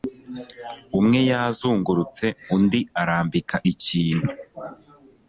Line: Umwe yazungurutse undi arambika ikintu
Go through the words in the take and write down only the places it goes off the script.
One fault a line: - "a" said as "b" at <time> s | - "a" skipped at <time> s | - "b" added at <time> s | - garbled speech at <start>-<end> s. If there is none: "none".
none